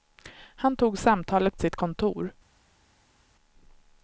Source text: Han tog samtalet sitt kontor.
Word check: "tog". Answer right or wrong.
right